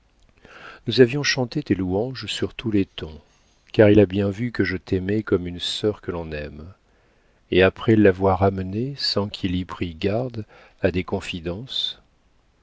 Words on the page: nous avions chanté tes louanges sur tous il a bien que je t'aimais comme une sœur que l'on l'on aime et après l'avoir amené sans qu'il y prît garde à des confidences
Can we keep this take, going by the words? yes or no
no